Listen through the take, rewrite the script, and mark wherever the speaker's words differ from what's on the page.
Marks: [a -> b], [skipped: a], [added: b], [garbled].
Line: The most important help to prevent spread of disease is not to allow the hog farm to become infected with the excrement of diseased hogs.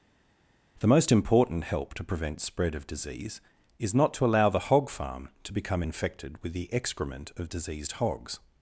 The most important help to prevent spread of disease is not to allow the hog farm to become infected with the excrement of diseased hogs.